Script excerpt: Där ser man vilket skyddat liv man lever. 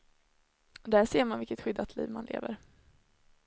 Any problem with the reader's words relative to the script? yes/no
no